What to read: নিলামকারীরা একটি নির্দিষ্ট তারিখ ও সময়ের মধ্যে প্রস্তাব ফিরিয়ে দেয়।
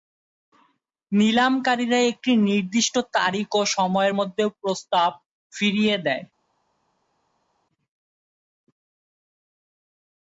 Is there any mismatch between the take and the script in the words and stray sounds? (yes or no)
no